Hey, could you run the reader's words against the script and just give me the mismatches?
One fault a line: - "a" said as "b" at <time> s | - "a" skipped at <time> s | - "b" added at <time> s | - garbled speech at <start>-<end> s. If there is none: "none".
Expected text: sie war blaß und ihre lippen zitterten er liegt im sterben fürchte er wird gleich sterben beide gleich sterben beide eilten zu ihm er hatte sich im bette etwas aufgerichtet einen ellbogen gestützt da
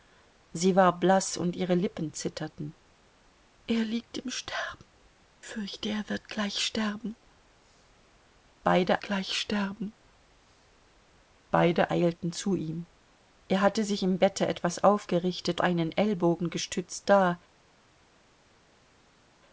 none